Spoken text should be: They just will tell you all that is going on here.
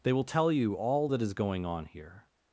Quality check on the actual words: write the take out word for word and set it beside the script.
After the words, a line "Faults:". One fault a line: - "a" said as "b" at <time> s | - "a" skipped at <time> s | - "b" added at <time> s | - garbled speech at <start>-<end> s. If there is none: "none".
They will tell you all that is going on here.
Faults:
- "just" skipped at 0.1 s